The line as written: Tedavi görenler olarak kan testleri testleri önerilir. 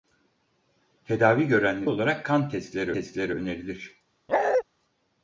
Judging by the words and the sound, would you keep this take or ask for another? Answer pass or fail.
fail